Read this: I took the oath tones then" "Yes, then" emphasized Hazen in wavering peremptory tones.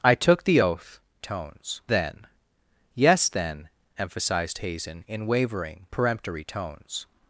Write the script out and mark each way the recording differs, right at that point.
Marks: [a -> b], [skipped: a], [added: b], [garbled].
I took the oath tones then" "Yes, then" emphasized Hazen in wavering peremptory tones.